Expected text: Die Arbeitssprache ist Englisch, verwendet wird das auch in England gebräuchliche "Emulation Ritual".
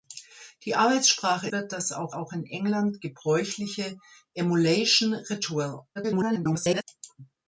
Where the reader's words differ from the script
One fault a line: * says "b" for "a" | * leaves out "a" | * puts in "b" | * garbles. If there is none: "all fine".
* leaves out "ist Englisch verwendet"
* puts in "auch"
* garbles